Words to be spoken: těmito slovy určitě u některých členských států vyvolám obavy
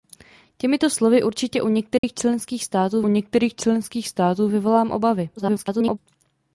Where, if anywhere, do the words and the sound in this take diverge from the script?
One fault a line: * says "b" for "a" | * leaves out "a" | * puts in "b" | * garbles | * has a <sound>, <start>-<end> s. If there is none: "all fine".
* has a dropout, 2.0-2.0 s
* puts in "některých členských států"
* garbles